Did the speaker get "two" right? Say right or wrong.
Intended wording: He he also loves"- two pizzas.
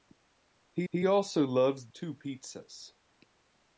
right